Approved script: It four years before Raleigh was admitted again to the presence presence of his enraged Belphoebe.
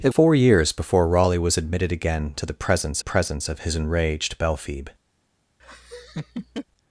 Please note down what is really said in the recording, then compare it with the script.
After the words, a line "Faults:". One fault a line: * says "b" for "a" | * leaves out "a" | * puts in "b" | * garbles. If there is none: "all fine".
It four years before Raleigh was admitted again to the presence presence of his enraged Belphoebe.
Faults:
all fine